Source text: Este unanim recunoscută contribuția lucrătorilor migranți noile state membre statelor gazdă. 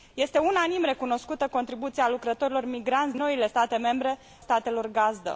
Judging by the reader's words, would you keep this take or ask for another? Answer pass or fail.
pass